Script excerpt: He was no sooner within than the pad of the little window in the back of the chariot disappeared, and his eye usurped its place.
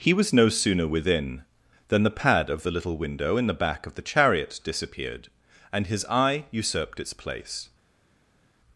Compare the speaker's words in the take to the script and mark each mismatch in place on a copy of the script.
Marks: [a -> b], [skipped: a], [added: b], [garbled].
He was no sooner within than the pad of the little window in the back of the chariot disappeared, and his eye usurped its place.